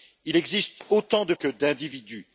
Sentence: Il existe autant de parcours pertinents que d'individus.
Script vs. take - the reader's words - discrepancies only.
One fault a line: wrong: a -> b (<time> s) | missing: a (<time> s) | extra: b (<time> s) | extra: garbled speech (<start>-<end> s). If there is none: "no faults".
missing: parcours pertinents (1.3 s)